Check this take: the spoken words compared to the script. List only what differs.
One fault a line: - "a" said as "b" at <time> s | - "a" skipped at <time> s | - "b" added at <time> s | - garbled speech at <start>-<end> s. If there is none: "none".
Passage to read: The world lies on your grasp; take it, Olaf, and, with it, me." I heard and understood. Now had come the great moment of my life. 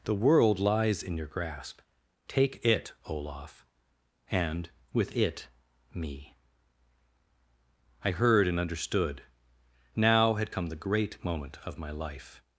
- "on" said as "in" at 1.0 s